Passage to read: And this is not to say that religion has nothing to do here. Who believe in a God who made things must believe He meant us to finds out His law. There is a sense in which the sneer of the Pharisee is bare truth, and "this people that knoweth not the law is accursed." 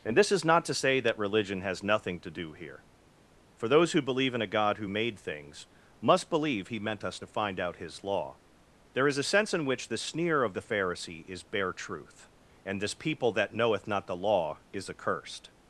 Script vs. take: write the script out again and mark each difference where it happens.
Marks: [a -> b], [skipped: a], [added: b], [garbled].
And this is not to say that religion has nothing to do here. [added: For those] Who believe in a God who made things must believe He meant us to [finds -> find] out His law. There is a sense in which the sneer of the Pharisee is bare truth, and "this people that knoweth not the law is accursed."